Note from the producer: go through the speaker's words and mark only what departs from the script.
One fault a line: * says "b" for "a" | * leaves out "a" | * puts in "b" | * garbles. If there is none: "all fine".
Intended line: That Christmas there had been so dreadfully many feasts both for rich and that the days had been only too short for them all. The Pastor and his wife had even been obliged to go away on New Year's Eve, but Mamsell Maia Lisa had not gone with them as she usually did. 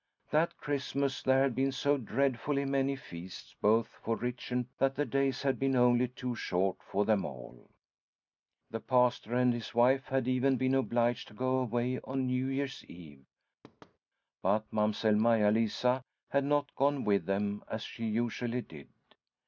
all fine